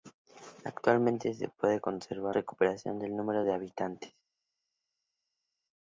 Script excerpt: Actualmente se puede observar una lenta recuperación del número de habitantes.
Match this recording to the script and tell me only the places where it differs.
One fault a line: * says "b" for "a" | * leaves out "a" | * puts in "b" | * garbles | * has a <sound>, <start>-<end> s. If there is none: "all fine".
* leaves out "una lenta"